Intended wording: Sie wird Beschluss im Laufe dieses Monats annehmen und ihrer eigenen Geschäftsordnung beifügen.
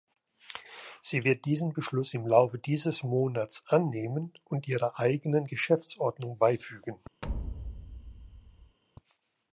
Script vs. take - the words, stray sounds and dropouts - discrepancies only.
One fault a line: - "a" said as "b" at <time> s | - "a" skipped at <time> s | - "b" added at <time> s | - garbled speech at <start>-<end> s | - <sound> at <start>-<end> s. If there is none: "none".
- "diesen" added at 1.4 s
- thud at 7.2-8.8 s